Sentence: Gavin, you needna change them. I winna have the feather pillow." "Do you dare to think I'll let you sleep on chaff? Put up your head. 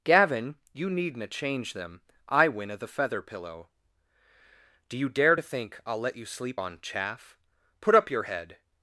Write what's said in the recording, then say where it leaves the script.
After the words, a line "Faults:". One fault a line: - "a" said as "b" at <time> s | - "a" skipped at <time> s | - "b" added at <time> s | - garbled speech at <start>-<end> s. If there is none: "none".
Gavin, you needna change them. I winna the feather pillow." "Do you dare to think I'll let you sleep on chaff? Put up your head.
Faults:
- "have" skipped at 2.8 s